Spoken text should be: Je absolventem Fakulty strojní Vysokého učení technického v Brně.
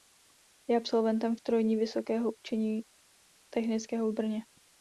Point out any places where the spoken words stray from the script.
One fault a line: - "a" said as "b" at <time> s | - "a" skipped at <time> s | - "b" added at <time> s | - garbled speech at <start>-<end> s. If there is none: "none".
- "Fakulty" skipped at 1.4 s